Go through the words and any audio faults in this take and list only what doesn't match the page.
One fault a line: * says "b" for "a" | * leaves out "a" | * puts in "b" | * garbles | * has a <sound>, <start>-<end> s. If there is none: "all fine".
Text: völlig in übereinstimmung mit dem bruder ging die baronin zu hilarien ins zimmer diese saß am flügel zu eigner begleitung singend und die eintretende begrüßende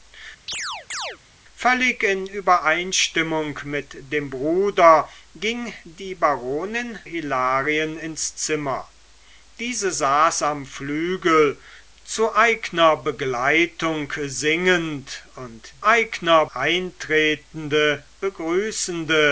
* has a chirp, 0.5-1.2 s
* leaves out "zu"
* says "eigner" for "die"